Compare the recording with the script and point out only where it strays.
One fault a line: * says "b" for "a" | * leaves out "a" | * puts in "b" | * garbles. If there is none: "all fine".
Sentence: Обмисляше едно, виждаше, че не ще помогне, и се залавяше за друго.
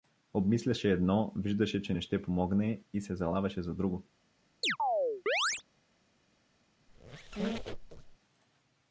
all fine